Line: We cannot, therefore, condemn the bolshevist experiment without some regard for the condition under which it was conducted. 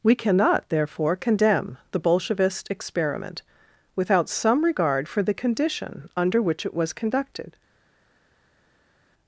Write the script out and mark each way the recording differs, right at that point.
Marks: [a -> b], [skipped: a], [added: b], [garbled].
We cannot, therefore, condemn the bolshevist experiment without some regard for the condition under which it was conducted.